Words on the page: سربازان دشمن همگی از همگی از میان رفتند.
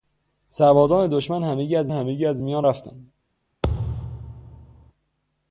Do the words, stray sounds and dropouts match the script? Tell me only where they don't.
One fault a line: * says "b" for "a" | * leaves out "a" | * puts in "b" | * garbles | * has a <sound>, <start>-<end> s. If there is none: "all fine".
* has a thud, 3.6-4.9 s